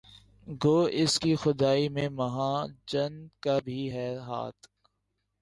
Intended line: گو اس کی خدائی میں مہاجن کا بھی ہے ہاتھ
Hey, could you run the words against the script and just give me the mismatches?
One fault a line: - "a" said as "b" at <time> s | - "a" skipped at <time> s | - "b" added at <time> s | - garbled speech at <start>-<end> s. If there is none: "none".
none